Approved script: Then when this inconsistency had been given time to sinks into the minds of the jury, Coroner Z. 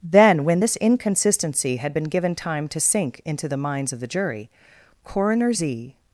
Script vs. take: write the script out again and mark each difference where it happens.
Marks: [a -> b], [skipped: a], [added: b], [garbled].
Then when this inconsistency had been given time to [sinks -> sink] into the minds of the jury, Coroner Z.